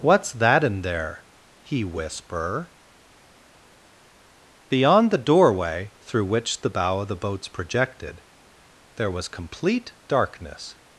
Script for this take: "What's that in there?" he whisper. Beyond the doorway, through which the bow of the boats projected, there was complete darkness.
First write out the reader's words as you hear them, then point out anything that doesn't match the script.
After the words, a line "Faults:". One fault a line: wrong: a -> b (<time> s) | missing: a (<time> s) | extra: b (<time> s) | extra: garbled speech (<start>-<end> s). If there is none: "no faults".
"What's that in there?" he whisper. Beyond the doorway, through which the bow of the boats projected, there was complete darkness.
Faults:
no faults